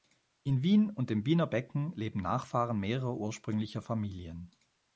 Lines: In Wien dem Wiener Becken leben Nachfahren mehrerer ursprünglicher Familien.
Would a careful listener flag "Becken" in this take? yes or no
no